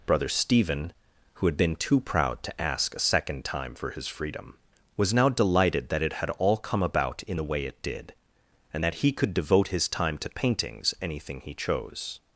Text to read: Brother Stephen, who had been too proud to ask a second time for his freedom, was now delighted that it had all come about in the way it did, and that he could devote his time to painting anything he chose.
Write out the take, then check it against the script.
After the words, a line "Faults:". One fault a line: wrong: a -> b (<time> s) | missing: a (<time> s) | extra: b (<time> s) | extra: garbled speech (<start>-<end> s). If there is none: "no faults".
Brother Stephen, who had been too proud to ask a second time for his freedom, was now delighted that it had all come about in the way it did, and that he could devote his time to paintings anything he chose.
Faults:
wrong: painting -> paintings (10.3 s)